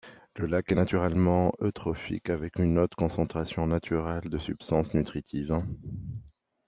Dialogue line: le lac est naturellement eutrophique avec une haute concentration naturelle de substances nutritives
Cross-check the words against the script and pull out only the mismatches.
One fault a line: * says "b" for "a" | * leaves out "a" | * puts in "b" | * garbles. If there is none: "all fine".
all fine